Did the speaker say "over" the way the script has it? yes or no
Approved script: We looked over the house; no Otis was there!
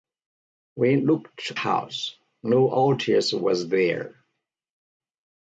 no